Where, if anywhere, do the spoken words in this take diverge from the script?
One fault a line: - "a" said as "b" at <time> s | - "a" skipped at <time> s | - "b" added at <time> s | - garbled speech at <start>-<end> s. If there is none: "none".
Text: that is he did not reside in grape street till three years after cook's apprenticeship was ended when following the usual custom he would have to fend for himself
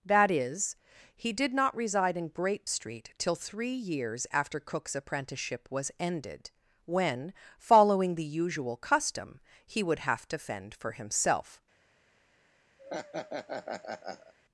none